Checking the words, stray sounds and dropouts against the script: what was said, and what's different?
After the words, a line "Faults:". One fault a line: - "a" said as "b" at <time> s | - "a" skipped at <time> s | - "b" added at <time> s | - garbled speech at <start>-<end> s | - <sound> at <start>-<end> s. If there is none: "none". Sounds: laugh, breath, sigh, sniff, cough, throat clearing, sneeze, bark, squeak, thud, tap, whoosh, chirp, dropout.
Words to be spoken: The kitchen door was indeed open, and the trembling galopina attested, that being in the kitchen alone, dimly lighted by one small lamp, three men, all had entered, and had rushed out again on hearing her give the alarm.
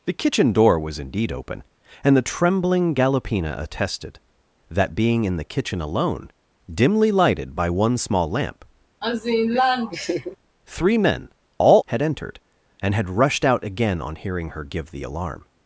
The kitchen door was indeed open, and the trembling galopina attested, that being in the kitchen alone, dimly lighted by one small lamp, three men, all had entered, and had rushed out again on hearing her give the alarm.
Faults:
- laugh at 9.0-10.4 s